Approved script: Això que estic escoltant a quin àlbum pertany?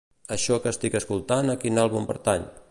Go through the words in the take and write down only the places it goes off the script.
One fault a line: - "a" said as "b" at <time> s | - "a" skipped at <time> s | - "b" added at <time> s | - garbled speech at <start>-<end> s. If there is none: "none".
none